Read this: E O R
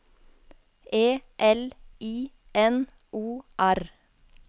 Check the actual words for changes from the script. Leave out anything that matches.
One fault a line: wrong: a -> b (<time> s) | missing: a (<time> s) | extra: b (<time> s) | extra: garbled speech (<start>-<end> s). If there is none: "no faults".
extra: L I N (1.4 s)